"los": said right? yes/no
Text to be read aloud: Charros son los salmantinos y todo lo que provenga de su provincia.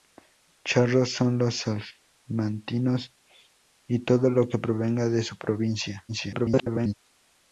yes